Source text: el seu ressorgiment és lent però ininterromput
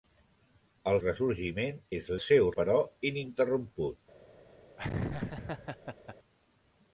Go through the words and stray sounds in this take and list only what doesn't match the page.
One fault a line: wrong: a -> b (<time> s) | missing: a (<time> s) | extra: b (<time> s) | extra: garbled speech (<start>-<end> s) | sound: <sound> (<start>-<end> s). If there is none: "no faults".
missing: seu (1.0 s)
wrong: lent -> seu (2.2 s)
sound: laugh (4.8-6.2 s)